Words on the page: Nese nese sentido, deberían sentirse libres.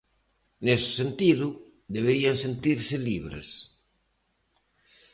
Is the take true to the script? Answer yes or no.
no